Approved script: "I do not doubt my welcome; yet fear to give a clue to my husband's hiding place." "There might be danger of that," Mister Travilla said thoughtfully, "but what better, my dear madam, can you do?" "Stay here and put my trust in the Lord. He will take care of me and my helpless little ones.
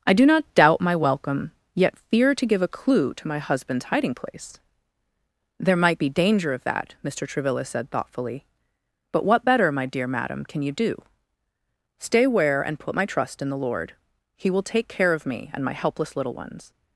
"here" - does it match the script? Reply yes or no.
no